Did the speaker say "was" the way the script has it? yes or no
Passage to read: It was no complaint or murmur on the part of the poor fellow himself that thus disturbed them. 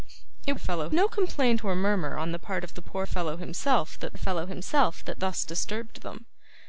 no